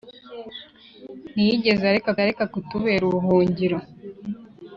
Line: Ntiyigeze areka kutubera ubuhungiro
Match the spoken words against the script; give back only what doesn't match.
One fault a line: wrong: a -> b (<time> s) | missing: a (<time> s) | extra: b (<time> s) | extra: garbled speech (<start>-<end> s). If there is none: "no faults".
extra: areka (2.2 s)